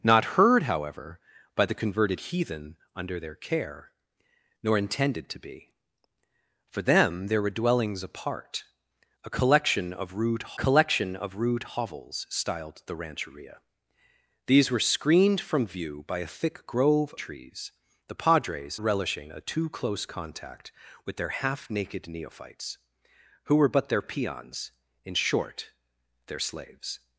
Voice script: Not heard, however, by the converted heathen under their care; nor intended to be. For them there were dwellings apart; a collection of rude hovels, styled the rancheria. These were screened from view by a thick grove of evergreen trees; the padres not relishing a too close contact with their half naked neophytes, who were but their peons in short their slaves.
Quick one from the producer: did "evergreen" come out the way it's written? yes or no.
no